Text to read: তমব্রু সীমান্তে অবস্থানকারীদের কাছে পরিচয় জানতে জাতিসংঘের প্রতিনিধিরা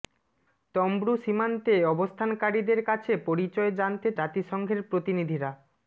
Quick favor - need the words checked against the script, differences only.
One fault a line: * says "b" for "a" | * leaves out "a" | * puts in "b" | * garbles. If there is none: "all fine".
all fine